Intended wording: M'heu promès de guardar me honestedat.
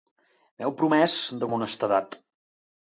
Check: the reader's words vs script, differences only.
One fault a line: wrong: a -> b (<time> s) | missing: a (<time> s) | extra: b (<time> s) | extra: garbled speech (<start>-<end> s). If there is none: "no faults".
missing: guardar (1.5 s)